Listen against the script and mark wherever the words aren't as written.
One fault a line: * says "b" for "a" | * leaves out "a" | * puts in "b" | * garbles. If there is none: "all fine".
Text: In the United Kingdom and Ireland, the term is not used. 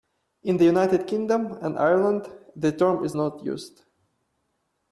all fine